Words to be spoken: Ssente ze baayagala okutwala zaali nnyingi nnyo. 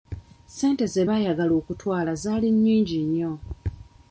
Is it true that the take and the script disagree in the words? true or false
false